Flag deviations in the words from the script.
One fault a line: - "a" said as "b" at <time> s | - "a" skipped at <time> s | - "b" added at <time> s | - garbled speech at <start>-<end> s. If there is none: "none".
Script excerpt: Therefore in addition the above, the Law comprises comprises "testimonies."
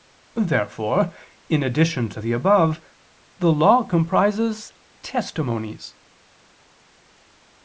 - "to" added at 2.1 s
- "comprises" skipped at 4.7 s